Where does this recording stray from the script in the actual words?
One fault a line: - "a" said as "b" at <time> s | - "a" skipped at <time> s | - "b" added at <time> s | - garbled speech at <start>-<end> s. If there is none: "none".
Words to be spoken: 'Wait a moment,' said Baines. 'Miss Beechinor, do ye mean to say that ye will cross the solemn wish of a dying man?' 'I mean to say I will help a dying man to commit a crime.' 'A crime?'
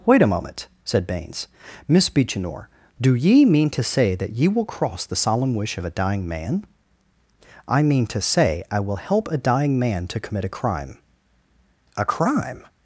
none